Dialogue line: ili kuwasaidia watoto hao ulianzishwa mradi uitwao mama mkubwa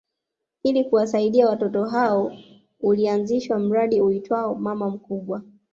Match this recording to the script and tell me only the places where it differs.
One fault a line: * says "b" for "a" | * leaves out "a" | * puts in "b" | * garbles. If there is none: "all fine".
all fine